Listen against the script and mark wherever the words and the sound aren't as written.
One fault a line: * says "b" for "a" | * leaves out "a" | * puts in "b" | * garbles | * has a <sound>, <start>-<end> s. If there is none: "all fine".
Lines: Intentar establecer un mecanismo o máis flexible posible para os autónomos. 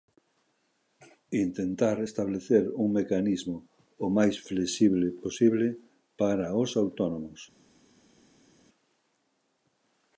all fine